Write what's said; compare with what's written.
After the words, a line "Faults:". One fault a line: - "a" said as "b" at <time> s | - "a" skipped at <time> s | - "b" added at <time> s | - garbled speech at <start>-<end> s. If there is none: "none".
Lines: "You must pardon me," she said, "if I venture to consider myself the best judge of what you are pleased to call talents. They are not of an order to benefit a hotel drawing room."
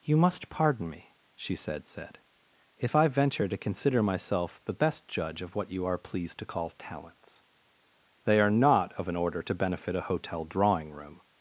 "You must pardon me," she said said, "if I venture to consider myself the best judge of what you are pleased to call talents. They are not of an order to benefit a hotel drawing room."
Faults:
- "said" added at 1.8 s